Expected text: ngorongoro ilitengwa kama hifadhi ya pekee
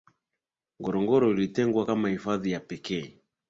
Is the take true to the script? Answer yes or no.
yes